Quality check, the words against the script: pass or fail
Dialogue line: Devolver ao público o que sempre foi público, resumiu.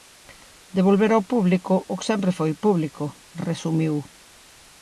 pass